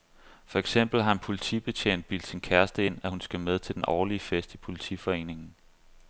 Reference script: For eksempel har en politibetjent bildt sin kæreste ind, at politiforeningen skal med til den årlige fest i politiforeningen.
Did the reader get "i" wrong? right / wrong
right